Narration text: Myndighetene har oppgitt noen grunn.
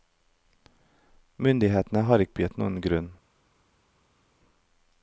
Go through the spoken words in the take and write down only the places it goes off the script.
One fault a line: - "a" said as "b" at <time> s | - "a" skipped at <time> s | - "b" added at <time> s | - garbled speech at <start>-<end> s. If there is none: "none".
none